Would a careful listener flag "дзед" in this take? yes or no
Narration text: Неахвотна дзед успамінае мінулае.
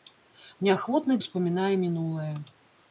yes